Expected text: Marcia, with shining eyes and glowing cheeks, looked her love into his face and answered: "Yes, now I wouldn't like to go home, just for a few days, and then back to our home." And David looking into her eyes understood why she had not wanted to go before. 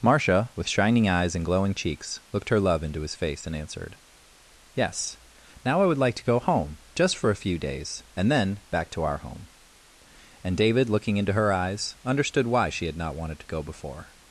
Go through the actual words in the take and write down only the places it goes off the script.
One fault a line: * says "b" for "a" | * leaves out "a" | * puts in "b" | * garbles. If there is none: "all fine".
* says "would" for "wouldn't"